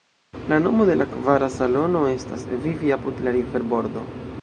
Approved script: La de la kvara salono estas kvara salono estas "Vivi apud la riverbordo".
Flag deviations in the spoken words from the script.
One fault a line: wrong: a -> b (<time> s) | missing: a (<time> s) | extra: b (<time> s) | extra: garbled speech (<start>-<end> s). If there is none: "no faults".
extra: nomo (0.6 s)
missing: kvara salono estas (2.5 s)